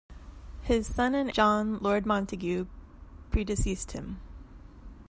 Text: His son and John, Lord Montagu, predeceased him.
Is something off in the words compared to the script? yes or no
no